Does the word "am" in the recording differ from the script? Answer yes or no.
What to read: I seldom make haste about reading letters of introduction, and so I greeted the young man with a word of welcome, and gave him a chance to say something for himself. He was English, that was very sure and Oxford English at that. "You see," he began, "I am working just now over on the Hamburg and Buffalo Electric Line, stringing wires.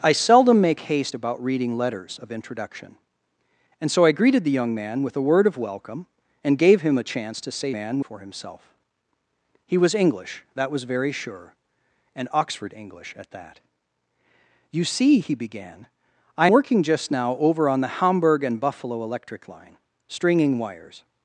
yes